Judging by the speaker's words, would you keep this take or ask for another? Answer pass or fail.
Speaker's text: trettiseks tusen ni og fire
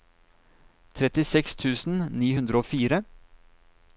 fail